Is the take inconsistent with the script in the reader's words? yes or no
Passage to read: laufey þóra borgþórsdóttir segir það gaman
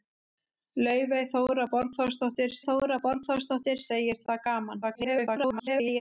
yes